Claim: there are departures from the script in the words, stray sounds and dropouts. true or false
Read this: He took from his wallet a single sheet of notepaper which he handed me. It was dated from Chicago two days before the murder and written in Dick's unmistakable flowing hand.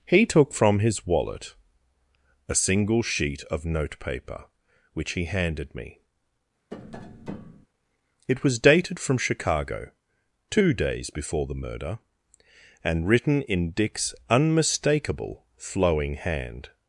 true